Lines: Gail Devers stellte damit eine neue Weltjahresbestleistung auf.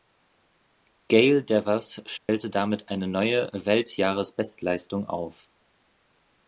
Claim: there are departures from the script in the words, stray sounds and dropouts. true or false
true